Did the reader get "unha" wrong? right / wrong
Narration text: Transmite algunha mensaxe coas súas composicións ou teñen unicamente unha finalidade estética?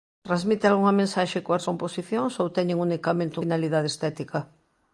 wrong